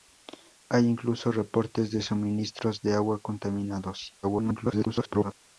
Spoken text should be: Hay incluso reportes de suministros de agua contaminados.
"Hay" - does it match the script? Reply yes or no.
yes